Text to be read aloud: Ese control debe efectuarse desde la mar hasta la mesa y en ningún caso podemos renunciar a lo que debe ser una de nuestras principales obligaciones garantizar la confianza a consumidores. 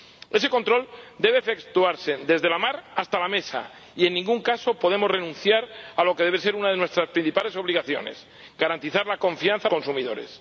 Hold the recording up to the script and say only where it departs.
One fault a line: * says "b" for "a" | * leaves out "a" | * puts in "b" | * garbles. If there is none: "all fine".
all fine